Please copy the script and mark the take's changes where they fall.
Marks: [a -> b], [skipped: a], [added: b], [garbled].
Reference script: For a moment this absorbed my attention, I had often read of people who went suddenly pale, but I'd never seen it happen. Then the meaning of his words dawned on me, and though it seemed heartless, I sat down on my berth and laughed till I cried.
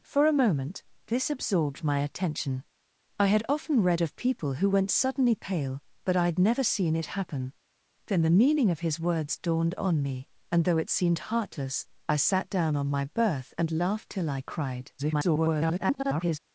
For a moment this absorbed my attention, I had often read of people who went suddenly pale, but I'd never seen it happen. Then the meaning of his words dawned on me, and though it seemed heartless, I sat down on my berth and laughed till I cried. [garbled]